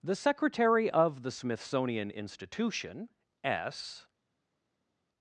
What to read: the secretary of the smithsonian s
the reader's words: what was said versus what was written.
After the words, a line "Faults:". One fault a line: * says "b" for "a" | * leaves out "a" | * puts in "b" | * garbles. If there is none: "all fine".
the secretary of the smithsonian institution s
Faults:
* puts in "institution"